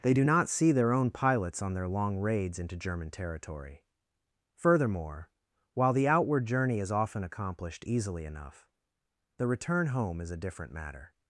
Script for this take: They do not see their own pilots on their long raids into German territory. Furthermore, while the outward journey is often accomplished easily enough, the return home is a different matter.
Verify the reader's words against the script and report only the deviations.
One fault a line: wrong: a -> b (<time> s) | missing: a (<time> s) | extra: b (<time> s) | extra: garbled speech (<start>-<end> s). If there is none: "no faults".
no faults